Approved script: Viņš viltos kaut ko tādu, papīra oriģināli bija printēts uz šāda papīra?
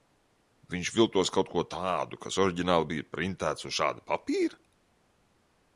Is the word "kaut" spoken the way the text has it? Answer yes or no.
yes